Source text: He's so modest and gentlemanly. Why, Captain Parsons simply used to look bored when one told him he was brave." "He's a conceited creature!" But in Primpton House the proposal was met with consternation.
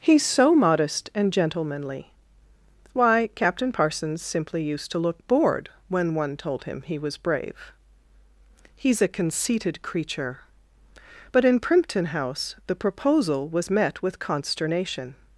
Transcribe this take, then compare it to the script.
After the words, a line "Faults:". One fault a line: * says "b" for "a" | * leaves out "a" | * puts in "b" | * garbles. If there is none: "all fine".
He's so modest and gentlemanly. Why, Captain Parsons simply used to look bored when one told him he was brave." "He's a conceited creature!" But in Primpton House the proposal was met with consternation.
Faults:
all fine